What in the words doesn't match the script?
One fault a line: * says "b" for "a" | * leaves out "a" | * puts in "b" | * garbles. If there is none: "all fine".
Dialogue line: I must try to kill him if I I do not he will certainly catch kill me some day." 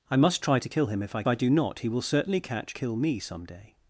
all fine